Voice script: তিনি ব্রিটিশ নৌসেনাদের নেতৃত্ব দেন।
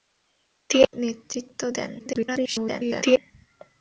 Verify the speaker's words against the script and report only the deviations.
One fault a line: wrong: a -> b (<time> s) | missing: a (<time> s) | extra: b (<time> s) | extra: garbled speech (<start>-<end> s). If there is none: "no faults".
missing: ব্রিটিশ নৌসেনাদের (0.9 s)
extra: garbled speech (2.0-3.2 s)